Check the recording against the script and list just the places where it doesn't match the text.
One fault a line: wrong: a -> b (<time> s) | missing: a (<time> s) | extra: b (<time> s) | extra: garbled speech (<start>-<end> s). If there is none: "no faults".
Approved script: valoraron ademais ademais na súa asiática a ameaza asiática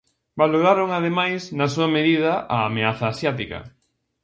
missing: ademais (1.4 s)
wrong: asiática -> medida (1.9 s)